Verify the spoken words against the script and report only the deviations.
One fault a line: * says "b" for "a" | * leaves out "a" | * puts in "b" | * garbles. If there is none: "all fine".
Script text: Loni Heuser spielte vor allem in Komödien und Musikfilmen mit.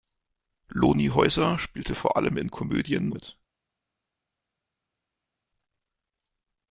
* leaves out "und Musikfilmen"